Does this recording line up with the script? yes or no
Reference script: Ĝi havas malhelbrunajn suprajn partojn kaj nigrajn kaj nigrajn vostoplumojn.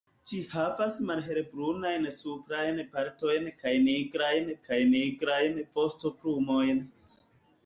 yes